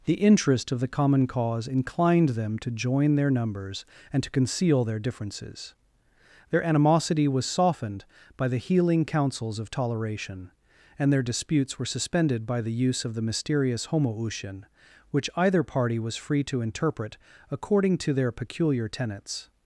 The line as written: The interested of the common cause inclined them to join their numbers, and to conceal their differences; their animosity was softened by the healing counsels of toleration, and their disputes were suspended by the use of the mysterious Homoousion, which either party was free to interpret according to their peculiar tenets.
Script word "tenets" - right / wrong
right